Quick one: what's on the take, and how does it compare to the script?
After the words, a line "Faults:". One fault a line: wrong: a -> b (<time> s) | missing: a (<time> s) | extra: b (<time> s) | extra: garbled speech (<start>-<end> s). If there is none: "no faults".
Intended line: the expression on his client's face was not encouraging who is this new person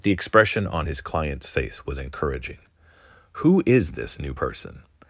the expression on his client's face was encouraging who is this new person
Faults:
missing: not (2.0 s)